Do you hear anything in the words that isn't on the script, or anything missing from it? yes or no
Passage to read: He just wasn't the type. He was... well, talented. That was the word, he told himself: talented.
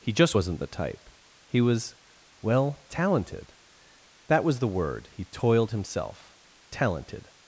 yes